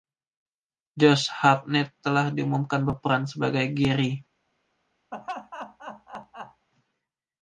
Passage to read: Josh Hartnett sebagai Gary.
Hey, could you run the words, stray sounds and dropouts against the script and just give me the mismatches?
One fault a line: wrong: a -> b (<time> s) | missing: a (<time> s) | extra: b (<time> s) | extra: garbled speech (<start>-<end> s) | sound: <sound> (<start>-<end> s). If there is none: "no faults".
extra: telah diumumkan berperan (2.0 s)
sound: laugh (5.1-6.7 s)